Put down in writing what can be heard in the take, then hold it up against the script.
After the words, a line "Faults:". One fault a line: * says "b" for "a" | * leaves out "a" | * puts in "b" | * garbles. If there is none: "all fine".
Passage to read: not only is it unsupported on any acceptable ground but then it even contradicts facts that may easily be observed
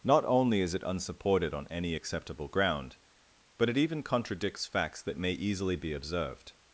not only is it unsupported on any acceptable ground but it even contradicts facts that may easily be observed
Faults:
* leaves out "then"